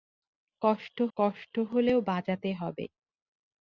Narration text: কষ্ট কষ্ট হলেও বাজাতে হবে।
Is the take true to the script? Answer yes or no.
yes